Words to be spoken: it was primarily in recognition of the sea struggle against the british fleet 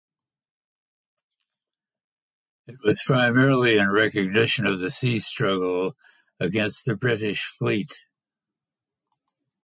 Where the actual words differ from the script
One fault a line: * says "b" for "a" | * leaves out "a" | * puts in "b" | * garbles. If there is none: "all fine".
all fine